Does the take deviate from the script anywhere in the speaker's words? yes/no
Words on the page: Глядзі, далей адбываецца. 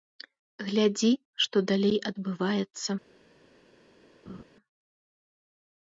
yes